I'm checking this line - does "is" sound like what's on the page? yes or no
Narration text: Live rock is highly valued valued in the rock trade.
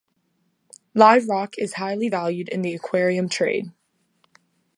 yes